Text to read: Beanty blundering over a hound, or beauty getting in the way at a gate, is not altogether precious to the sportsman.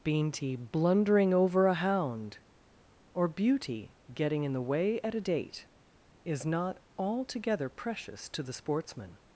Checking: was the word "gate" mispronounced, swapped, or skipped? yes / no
yes